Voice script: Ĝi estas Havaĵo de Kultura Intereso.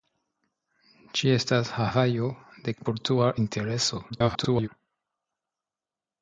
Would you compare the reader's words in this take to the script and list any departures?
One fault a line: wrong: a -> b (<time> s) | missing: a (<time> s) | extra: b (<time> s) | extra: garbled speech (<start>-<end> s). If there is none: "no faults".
extra: garbled speech (4.1-4.7 s)